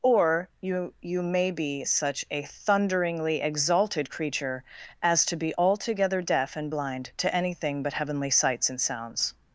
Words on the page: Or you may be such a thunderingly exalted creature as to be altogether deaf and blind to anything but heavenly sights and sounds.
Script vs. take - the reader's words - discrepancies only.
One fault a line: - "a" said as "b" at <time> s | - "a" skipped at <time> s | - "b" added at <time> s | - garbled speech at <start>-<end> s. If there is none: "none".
- "you" added at 1.0 s